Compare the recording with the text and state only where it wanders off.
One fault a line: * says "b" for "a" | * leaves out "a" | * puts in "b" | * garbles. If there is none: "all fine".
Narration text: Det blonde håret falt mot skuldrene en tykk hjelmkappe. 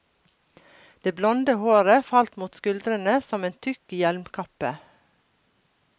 * puts in "som"